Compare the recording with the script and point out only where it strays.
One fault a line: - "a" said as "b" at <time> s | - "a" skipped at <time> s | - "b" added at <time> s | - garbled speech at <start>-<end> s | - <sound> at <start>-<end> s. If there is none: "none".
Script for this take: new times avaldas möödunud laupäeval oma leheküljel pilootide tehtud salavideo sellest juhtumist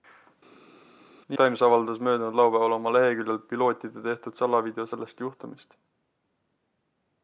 none